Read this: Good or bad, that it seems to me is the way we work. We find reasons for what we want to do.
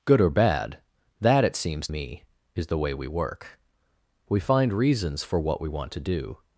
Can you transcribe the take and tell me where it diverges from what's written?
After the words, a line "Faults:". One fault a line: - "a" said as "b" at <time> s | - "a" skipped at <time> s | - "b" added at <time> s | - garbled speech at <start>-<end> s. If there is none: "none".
Good or bad, that it seems me is the way we work. We find reasons for what we want to do.
Faults:
- "to" skipped at 1.9 s